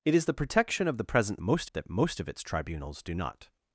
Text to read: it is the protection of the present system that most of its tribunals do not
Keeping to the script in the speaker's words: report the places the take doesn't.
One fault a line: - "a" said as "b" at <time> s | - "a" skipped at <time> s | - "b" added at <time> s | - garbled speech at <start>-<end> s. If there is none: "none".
- "system" said as "most" at 1.4 s